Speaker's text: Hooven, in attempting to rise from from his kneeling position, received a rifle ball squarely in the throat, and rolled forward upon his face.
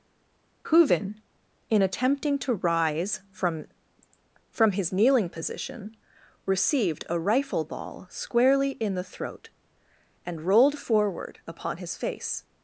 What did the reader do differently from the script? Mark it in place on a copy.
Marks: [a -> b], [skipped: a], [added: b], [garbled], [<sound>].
Hooven, in attempting to rise from from his kneeling position, received a rifle ball squarely in the throat, and rolled forward upon his face.